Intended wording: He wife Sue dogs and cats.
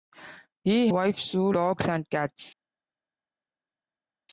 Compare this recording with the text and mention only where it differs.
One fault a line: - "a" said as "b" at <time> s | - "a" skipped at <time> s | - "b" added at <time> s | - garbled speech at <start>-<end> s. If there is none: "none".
none